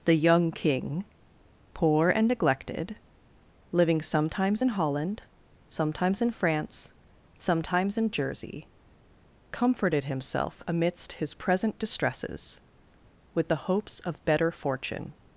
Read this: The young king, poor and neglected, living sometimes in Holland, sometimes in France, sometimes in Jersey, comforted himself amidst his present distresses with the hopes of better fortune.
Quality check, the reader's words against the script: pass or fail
pass